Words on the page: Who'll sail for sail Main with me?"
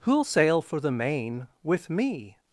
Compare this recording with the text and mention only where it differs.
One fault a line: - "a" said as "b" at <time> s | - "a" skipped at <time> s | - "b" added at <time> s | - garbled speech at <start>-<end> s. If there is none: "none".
- "sail" said as "the" at 0.8 s